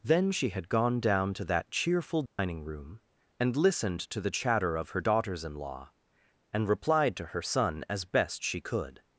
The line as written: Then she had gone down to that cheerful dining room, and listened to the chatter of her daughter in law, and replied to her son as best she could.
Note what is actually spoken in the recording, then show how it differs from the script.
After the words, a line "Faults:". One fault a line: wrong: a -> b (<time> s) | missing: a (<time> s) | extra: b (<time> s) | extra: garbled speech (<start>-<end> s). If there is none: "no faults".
Then she had gone down to that cheerful dining room, and listened to the chatter of her daughters in law, and replied to her son as best she could.
Faults:
wrong: daughter -> daughters (5.0 s)